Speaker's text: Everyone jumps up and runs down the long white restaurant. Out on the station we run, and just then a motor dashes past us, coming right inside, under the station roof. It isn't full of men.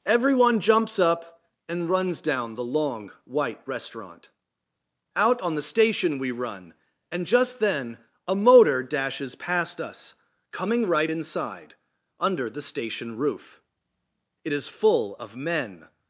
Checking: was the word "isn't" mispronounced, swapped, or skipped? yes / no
yes